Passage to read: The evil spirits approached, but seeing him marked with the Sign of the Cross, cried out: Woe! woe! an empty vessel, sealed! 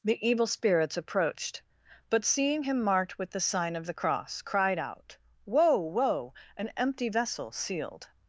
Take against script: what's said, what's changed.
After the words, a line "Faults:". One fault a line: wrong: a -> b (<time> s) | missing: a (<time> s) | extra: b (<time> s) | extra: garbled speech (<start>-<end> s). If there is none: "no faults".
The evil spirits approached, but seeing him marked with the Sign of the Cross, cried out: Woe! woe! an empty vessel, sealed!
Faults:
no faults